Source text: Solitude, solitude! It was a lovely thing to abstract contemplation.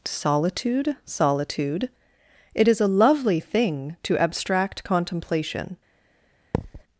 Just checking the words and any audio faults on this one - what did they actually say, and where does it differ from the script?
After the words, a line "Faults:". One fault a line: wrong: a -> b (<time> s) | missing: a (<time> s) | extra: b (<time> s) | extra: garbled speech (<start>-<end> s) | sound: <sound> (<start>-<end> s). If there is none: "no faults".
Solitude, solitude! It is a lovely thing to abstract contemplation.
Faults:
wrong: was -> is (2.7 s)
sound: thud (6.5-6.8 s)